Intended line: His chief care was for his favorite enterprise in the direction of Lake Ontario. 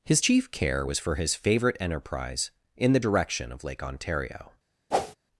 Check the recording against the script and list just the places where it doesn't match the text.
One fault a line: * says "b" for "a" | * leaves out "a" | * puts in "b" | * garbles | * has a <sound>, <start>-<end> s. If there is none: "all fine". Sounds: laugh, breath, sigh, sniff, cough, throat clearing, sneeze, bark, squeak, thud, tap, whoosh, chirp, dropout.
* has a whoosh, 4.9-5.2 s